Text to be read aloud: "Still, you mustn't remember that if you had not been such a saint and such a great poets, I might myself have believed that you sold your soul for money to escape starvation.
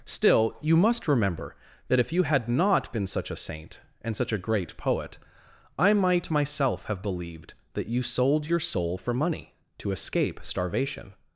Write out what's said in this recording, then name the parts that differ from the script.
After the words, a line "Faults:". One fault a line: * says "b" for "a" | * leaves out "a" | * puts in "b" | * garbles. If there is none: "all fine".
"Still, you must remember that if you had not been such a saint and such a great poet, I might myself have believed that you sold your soul for money to escape starvation.
Faults:
* says "must" for "mustn't"
* says "poet" for "poets"